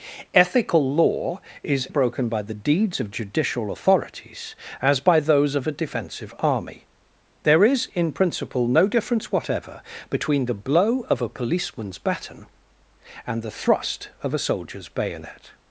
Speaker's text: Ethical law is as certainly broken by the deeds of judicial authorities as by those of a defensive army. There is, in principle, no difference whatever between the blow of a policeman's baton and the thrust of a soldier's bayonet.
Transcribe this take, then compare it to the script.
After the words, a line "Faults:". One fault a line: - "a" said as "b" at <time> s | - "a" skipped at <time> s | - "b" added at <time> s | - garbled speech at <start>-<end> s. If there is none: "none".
Ethical law is broken by the deeds of judicial authorities as by those of a defensive army. There is, in principle, no difference whatever between the blow of a policeman's baton and the thrust of a soldier's bayonet.
Faults:
- "as certainly" skipped at 1.9 s